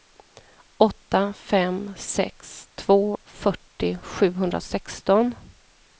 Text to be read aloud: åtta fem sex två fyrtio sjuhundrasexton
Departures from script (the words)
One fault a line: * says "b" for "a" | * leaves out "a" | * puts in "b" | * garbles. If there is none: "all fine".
all fine